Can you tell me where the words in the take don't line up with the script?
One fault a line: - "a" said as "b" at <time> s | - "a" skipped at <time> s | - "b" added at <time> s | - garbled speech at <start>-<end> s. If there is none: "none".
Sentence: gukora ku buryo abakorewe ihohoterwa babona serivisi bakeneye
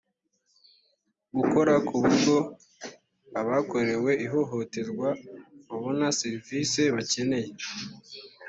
none